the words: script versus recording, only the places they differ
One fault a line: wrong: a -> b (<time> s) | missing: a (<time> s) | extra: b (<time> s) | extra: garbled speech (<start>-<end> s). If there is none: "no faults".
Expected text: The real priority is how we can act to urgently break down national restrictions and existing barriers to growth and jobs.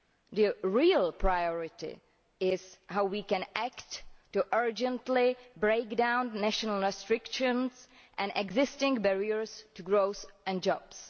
no faults